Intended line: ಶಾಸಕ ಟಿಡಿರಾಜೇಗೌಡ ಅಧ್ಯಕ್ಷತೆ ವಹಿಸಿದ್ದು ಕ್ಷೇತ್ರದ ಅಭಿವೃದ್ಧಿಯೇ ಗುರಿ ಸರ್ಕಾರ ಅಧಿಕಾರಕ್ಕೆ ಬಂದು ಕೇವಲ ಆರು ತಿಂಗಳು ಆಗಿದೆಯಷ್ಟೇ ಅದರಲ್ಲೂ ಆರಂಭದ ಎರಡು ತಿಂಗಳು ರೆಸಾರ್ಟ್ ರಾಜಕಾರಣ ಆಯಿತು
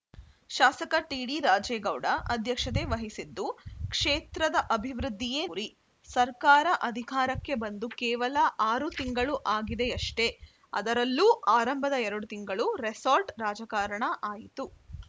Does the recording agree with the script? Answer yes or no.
yes